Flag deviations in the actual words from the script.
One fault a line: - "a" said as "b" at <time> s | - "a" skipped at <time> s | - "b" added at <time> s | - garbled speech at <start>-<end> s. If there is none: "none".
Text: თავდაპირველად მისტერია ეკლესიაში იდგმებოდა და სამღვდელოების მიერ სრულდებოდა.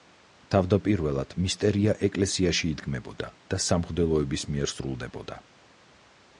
none